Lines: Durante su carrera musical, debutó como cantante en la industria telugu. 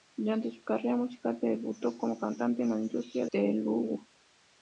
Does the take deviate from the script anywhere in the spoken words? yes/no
no